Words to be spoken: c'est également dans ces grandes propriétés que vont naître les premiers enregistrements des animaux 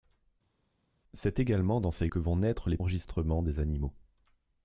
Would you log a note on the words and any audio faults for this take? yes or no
yes